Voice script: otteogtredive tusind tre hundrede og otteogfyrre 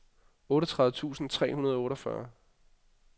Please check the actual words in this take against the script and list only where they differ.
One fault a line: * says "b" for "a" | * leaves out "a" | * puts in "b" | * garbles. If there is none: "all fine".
all fine